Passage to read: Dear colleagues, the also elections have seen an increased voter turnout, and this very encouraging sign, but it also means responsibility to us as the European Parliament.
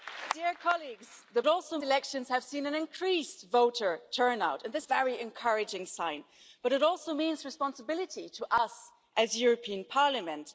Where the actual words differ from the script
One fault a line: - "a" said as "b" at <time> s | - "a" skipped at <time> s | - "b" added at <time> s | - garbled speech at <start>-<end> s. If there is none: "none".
none